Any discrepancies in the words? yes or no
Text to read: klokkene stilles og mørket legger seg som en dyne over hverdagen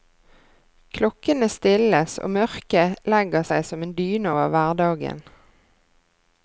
no